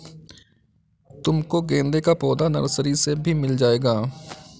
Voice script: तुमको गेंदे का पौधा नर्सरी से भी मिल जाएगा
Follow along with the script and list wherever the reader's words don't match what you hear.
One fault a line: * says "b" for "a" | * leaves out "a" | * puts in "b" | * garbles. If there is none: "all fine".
all fine